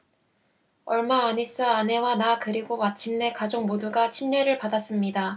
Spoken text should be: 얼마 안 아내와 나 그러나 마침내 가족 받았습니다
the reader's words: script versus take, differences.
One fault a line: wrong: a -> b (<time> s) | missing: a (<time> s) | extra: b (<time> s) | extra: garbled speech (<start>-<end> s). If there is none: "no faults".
extra: 있어 (1.4 s)
wrong: 그러나 -> 그리고 (2.4 s)
extra: 모두가 침례를 (3.6 s)